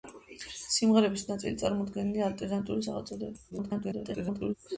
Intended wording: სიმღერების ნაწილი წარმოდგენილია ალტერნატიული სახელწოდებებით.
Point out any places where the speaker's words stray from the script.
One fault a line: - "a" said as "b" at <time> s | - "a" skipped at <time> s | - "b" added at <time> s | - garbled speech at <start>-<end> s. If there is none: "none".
- garbled speech at 3.5-4.5 s